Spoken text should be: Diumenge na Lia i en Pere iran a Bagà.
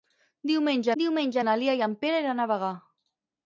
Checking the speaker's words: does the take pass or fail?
fail